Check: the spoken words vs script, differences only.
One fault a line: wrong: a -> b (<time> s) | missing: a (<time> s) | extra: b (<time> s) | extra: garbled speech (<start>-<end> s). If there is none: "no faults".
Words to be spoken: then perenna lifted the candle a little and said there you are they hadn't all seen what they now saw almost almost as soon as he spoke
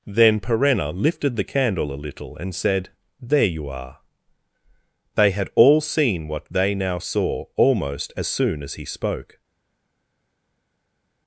wrong: hadn't -> had (5.3 s)
missing: almost (8.1 s)